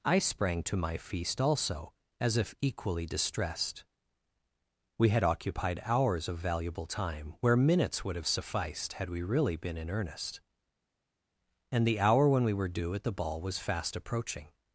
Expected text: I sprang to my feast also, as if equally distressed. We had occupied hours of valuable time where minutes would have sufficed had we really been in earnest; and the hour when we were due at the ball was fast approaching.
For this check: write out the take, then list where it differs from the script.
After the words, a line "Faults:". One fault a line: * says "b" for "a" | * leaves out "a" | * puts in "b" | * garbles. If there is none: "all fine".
I sprang to my feast also, as if equally distressed. We had occupied hours of valuable time where minutes would have sufficed had we really been in earnest; and the hour when we were due at the ball was fast approaching.
Faults:
all fine